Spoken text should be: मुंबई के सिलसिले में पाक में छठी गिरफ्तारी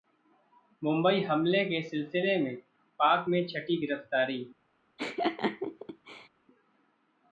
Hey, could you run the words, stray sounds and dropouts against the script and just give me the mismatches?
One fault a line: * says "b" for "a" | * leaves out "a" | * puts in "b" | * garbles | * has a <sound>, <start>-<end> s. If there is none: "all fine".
* puts in "हमले"
* has a laugh, 5.0-6.3 s